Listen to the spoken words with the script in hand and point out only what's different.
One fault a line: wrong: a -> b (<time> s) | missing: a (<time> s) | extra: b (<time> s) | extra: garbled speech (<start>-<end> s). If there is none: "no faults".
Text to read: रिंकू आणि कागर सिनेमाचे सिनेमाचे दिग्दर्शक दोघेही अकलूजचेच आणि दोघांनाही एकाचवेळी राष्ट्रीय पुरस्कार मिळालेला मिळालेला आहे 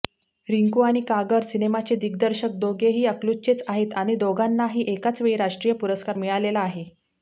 missing: सिनेमाचे (1.9 s)
extra: आहेत (3.7 s)
missing: मिळालेला (6.6 s)